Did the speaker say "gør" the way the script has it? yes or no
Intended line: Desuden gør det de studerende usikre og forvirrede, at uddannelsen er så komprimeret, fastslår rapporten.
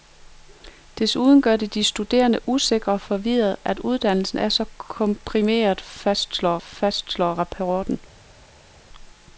yes